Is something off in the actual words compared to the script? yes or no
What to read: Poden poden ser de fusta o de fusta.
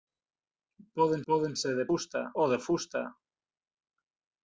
no